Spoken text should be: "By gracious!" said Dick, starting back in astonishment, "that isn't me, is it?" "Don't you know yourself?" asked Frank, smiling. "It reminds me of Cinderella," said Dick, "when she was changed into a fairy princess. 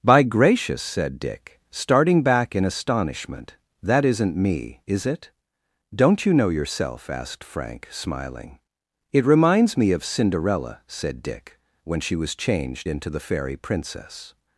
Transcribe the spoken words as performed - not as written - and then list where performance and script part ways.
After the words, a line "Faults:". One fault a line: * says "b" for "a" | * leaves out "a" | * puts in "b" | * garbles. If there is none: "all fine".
"By gracious!" said Dick, starting back in astonishment, "that isn't me, is it?" "Don't you know yourself?" asked Frank, smiling. "It reminds me of Cinderella," said Dick, "when she was changed into the fairy princess.
Faults:
* says "the" for "a"